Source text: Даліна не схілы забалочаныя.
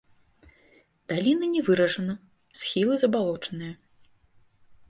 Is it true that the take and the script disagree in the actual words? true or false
true